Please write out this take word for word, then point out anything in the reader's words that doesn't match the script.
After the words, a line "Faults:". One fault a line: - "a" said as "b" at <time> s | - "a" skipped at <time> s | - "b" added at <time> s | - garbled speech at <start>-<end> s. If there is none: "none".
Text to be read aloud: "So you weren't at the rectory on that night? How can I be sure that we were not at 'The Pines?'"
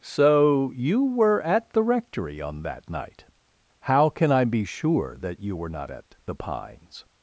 "So you were at the rectory on that night? How can I be sure that you were not at 'The Pines?'"
Faults:
- "weren't" said as "were" at 1.1 s
- "we" said as "you" at 5.4 s